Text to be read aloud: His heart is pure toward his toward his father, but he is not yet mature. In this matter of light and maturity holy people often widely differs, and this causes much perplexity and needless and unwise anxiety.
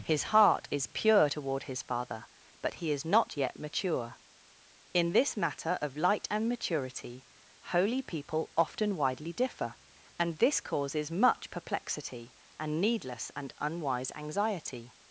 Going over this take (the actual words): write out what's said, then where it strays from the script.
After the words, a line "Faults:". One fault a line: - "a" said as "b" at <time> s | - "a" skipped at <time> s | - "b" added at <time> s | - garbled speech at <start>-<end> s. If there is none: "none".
His heart is pure toward his father, but he is not yet mature. In this matter of light and maturity holy people often widely differ, and this causes much perplexity and needless and unwise anxiety.
Faults:
- "toward his" skipped at 1.8 s
- "differs" said as "differ" at 9.3 s